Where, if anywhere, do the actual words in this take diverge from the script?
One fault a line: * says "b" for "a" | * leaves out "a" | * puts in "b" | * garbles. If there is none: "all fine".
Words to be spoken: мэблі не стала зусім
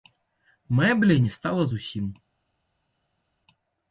all fine